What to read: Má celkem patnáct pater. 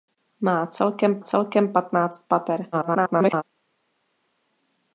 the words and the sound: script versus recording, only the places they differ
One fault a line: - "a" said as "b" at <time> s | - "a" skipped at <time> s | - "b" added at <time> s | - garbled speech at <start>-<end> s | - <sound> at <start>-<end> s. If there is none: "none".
- "celkem" added at 1.2 s
- garbled speech at 2.7-3.4 s